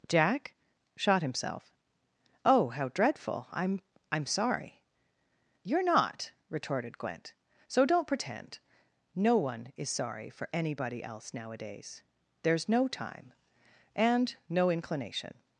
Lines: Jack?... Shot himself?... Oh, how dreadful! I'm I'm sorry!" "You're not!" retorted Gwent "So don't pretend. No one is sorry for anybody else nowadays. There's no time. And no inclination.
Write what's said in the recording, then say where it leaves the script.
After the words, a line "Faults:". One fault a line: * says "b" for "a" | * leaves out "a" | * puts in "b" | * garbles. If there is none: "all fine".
Jack?... Shot himself?... Oh, how dreadful! I'm I'm sorry!" "You're not!" retorted Gwent "So don't pretend. No one is sorry for anybody else nowadays. There's no time. And no inclination.
Faults:
all fine